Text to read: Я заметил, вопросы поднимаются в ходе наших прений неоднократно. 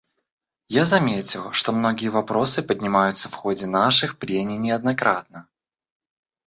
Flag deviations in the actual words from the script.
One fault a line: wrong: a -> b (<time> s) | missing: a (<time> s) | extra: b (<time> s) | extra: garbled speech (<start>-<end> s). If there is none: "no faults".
extra: что многие (1.5 s)